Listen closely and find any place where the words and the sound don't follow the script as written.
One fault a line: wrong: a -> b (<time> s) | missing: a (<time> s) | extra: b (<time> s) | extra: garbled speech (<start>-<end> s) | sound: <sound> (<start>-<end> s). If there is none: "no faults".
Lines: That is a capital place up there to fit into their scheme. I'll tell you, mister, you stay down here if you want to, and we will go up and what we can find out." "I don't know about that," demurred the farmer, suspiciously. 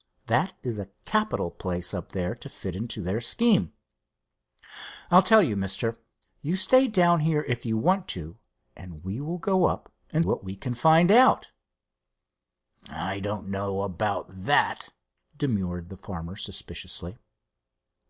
no faults